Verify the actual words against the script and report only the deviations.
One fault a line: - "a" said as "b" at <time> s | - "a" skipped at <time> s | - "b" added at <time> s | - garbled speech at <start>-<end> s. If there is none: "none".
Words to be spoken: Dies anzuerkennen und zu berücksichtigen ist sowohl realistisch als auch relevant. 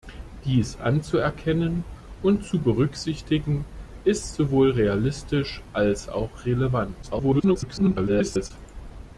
- garbled speech at 7.0-8.5 s